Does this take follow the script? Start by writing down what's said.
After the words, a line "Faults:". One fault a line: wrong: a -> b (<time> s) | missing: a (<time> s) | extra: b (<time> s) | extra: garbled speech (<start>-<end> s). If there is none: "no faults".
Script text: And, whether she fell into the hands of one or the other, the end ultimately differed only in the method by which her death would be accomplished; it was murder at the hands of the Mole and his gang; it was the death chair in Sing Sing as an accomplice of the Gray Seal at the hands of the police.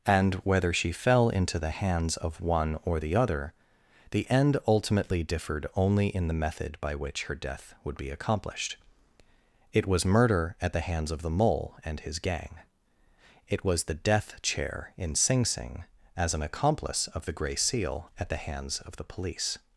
And, whether she fell into the hands of one or the other, the end ultimately differed only in the method by which her death would be accomplished; it was murder at the hands of the Mole and his gang; it was the death chair in Sing Sing as an accomplice of the Gray Seal at the hands of the police.
Faults:
no faults